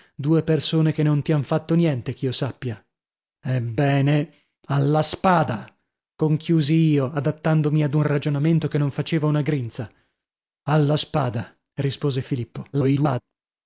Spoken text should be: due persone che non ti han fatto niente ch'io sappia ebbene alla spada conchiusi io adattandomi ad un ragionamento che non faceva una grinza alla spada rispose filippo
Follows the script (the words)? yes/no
no